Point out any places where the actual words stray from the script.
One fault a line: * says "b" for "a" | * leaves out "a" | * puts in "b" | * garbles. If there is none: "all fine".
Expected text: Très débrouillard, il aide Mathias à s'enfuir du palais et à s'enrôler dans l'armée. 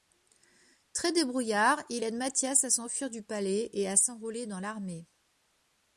all fine